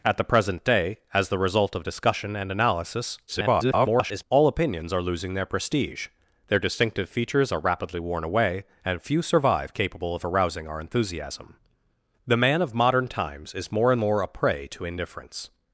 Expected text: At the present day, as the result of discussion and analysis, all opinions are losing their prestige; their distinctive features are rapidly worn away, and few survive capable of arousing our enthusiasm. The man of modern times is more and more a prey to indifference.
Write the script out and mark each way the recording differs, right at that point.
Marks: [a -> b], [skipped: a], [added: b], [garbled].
At the present day, as the result of discussion and analysis, [garbled] all opinions are losing their prestige; their distinctive features are rapidly worn away, and few survive capable of arousing our enthusiasm. The man of modern times is more and more a prey to indifference.